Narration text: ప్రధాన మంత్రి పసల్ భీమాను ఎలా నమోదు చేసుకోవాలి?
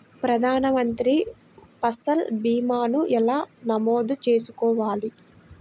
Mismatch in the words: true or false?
false